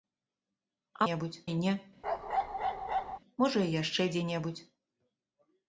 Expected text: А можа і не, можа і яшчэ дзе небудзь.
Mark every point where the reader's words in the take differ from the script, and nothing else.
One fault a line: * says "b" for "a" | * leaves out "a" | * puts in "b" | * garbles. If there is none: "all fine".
* says "небудзь" for "можа"